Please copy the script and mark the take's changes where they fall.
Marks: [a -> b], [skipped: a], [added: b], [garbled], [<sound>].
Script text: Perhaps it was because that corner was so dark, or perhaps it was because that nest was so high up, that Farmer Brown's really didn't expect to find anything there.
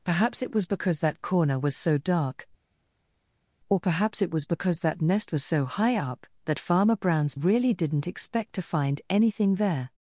Perhaps it was because that corner was so dark, or perhaps it was because that nest was so high up, that Farmer Brown's really didn't expect to find anything there.